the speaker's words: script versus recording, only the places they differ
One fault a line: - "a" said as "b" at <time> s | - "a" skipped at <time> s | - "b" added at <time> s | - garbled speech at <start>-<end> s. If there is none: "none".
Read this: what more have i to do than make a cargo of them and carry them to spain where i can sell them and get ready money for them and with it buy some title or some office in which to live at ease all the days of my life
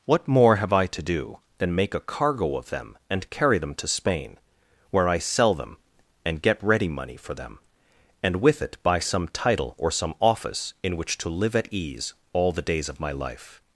- "can" skipped at 5.2 s